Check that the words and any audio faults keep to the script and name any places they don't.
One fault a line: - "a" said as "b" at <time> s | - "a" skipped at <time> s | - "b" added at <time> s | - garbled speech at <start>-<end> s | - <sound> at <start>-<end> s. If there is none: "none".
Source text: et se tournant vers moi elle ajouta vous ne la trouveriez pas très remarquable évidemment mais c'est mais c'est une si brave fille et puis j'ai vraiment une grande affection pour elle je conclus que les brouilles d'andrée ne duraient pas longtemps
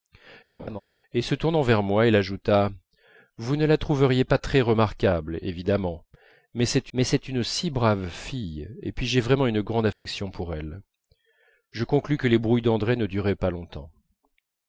- laugh at 0.6-0.8 s
- dropout at 9.9-10.1 s